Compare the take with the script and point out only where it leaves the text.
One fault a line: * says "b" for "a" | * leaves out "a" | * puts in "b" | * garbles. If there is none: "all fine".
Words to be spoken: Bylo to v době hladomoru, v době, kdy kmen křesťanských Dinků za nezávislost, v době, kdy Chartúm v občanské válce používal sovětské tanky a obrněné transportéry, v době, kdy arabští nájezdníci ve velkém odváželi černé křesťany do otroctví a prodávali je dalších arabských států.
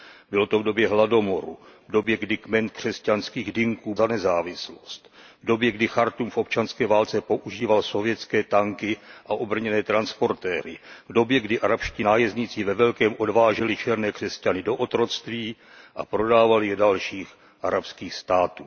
all fine